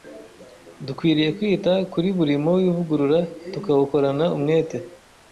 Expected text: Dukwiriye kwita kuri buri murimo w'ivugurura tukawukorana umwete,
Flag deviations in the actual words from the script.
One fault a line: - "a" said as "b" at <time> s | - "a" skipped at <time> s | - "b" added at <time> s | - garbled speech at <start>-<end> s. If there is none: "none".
none